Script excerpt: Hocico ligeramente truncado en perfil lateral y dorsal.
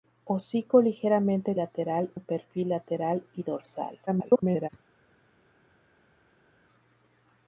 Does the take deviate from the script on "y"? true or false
false